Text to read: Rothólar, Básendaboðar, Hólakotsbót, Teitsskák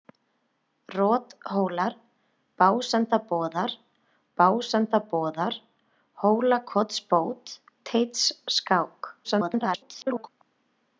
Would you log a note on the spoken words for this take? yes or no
yes